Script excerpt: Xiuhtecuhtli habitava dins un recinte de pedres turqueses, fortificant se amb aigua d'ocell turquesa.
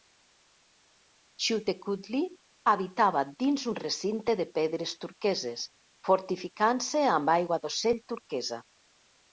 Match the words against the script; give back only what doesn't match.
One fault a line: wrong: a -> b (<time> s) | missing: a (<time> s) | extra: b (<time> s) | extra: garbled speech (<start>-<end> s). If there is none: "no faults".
no faults